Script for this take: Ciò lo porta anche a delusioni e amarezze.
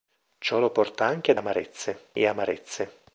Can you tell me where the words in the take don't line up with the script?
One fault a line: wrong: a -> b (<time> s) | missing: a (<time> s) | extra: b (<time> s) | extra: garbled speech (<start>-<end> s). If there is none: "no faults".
wrong: delusioni -> amarezze (1.3 s)